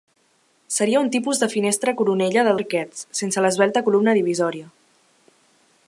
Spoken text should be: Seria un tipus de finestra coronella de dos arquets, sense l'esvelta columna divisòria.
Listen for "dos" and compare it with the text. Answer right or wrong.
wrong